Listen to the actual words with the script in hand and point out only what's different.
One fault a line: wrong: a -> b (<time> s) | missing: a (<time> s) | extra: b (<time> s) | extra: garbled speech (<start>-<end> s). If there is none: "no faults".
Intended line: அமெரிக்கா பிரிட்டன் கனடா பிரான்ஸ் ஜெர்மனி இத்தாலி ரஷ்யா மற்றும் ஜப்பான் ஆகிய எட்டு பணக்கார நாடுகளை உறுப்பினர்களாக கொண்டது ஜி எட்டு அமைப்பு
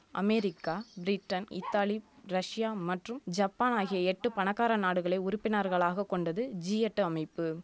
missing: கனடா பிரான்ஸ் ஜெர்மனி (1.5 s)